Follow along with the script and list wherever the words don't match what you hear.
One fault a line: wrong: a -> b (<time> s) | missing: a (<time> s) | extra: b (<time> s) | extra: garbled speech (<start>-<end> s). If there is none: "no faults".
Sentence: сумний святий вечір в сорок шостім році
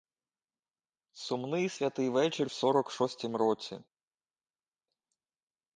no faults